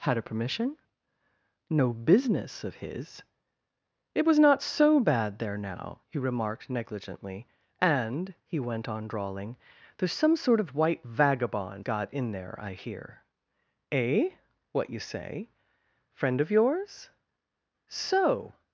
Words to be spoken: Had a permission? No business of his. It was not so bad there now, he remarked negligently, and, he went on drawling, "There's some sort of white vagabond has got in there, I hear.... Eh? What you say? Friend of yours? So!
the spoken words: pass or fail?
fail